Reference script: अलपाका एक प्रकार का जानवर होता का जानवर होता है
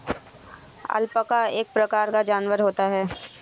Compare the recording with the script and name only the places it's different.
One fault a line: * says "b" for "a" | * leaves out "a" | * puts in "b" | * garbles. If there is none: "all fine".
* leaves out "का जानवर होता"